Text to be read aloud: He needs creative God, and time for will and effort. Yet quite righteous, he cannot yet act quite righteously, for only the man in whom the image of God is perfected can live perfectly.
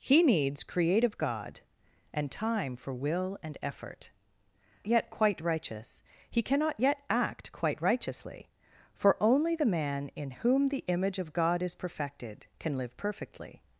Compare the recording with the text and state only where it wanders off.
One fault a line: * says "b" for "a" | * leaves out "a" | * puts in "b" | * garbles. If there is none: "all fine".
all fine